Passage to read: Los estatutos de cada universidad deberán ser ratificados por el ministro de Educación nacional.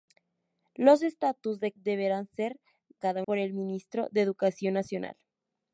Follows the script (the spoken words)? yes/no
no